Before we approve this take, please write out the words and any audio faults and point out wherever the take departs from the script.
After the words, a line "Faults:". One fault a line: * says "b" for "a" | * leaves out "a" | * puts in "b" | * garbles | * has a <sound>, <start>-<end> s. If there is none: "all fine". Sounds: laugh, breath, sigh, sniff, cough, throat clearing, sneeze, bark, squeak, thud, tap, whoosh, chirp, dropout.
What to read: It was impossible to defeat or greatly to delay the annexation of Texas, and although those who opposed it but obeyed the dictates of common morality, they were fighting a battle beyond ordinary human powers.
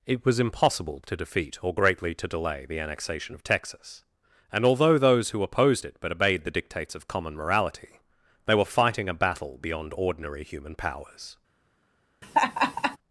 It was impossible to defeat or greatly to delay the annexation of Texas, and although those who opposed it but obeyed the dictates of common morality, they were fighting a battle beyond ordinary human powers.
Faults:
* has a laugh, 12.2-13.0 s